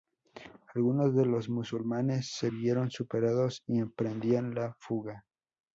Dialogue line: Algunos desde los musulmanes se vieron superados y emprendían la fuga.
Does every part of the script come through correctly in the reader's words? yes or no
no